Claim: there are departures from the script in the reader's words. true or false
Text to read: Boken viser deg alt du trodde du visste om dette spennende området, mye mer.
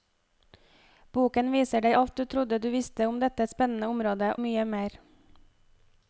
false